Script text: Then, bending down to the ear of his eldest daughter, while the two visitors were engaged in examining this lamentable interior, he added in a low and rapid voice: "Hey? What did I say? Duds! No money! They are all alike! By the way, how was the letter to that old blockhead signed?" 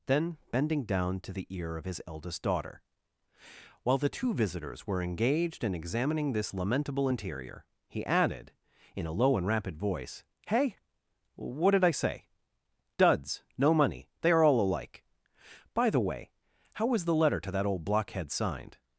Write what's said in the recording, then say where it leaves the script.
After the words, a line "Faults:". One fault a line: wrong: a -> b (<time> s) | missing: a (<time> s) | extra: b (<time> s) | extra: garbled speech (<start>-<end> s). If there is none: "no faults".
Then, bending down to the ear of his eldest daughter, while the two visitors were engaged in examining this lamentable interior, he added in a low and rapid voice: "Hey? What did I say? Duds! No money! They are all alike! By the way, how was the letter to that old blockhead signed?"
Faults:
no faults